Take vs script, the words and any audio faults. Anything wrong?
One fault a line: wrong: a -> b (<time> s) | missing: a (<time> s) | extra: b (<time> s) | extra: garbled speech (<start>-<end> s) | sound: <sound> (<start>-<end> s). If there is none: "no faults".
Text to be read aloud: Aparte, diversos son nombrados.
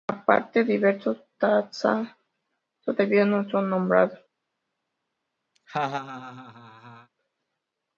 extra: taxa todavía no (1.4 s)
sound: laugh (5.5-7.1 s)